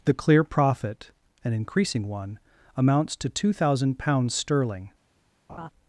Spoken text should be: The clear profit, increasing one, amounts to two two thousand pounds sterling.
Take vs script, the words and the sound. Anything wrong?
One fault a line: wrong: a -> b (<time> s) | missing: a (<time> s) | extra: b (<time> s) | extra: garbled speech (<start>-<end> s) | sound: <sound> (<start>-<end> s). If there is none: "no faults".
extra: an (1.4 s)
missing: two (3.5 s)
sound: laugh (5.5-5.7 s)